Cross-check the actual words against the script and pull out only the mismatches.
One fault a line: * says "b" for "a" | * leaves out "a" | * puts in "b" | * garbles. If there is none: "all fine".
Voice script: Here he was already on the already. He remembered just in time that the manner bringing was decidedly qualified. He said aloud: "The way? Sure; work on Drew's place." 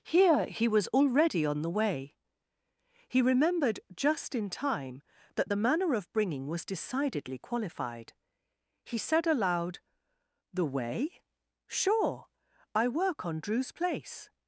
* says "way" for "already"
* puts in "of"
* puts in "I"